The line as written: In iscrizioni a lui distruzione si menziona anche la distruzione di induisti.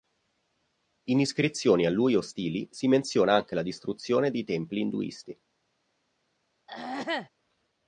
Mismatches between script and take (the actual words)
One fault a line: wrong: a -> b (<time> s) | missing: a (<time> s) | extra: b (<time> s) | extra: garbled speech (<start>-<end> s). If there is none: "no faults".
wrong: distruzione -> ostili (2.1 s)
extra: templi (4.5 s)